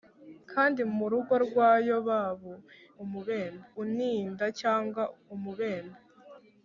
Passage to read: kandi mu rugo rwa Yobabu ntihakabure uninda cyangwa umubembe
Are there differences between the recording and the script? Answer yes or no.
yes